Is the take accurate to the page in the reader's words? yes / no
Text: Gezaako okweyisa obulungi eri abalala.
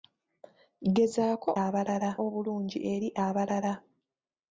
no